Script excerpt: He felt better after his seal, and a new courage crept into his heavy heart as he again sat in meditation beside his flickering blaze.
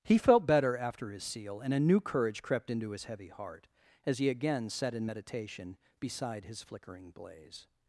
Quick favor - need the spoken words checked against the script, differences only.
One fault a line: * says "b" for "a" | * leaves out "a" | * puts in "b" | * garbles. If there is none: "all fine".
all fine